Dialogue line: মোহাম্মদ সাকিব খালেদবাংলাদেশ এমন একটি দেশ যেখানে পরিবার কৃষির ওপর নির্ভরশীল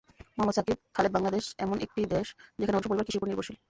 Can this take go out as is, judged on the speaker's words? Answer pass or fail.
pass